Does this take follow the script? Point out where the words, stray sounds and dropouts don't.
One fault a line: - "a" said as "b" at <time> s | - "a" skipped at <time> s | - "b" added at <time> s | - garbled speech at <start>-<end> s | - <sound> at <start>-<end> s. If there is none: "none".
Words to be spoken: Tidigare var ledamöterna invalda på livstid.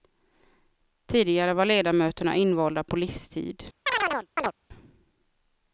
- chirp at 3.9-4.5 s